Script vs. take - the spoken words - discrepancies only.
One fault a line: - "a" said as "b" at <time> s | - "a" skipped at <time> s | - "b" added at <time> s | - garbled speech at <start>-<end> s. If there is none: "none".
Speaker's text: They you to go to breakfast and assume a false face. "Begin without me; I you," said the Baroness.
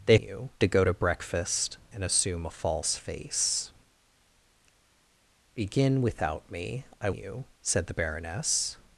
none